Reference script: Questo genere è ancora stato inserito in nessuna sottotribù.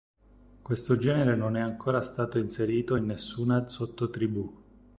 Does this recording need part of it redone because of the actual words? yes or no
yes